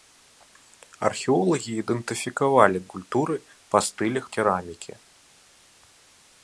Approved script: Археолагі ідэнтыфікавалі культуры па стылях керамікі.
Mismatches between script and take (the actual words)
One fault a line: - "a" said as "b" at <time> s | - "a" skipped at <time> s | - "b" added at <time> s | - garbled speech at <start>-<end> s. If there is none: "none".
none